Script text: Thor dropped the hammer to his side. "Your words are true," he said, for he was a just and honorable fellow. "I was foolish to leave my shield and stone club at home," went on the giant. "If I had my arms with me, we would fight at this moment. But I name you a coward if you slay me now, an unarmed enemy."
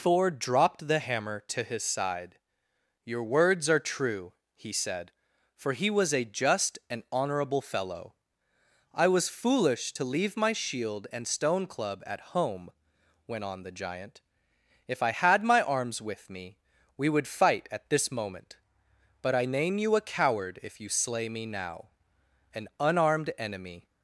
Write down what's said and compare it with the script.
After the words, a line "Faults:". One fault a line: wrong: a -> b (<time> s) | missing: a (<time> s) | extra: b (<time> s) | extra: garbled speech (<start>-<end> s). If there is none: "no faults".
Thor dropped the hammer to his side. "Your words are true," he said, for he was a just and honorable fellow. "I was foolish to leave my shield and stone club at home," went on the giant. "If I had my arms with me, we would fight at this moment. But I name you a coward if you slay me now, an unarmed enemy."
Faults:
no faults